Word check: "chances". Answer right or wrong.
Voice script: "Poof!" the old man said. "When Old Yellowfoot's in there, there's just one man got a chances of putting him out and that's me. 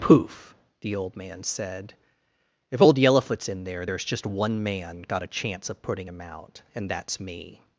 wrong